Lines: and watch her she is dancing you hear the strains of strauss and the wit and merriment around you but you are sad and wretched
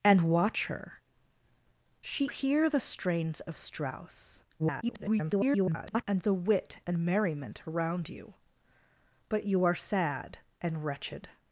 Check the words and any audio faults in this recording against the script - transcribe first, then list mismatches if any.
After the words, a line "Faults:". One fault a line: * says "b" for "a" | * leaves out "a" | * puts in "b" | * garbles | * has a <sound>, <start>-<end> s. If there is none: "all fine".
and watch her she hear the strains of strauss [garbled] and the wit and merriment around you but you are sad and wretched
Faults:
* leaves out "is dancing you"
* garbles